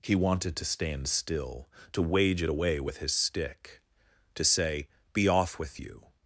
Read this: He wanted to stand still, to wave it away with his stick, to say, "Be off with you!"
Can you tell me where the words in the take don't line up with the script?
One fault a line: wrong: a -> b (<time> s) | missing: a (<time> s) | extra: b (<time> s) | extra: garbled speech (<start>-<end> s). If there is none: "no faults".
wrong: wave -> wage (2.0 s)